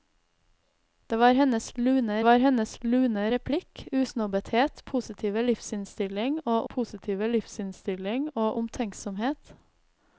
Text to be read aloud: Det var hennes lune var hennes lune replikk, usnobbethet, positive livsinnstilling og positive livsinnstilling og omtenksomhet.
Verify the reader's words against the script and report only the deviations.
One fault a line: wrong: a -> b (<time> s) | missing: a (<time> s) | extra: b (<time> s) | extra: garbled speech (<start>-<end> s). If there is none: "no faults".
no faults